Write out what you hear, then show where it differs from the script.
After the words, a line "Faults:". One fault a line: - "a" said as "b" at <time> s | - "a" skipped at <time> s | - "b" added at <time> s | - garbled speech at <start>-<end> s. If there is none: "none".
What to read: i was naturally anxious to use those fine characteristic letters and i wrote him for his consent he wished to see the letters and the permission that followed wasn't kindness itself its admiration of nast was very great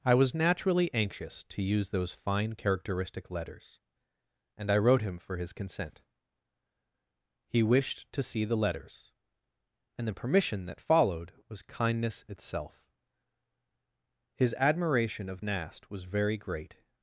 i was naturally anxious to use those fine characteristic letters and i wrote him for his consent he wished to see the letters and the permission that followed was kindness itself his admiration of nast was very great
Faults:
- "wasn't" said as "was" at 11.5 s
- "its" said as "his" at 14.3 s